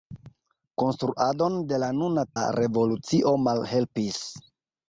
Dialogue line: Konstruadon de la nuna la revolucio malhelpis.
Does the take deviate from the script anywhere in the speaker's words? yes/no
no